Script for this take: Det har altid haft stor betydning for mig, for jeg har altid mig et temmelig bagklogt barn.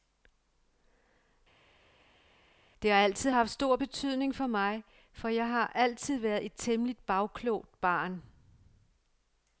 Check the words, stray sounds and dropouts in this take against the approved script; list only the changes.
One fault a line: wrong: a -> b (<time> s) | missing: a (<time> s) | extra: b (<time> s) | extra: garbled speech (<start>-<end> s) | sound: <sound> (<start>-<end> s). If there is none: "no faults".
wrong: mig -> været (6.2 s)